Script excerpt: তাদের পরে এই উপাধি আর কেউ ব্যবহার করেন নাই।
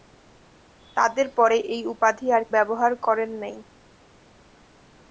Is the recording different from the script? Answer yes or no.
yes